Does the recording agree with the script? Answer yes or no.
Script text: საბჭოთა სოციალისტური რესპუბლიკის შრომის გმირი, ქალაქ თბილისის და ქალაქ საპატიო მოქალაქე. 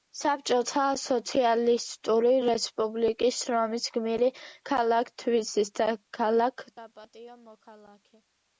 yes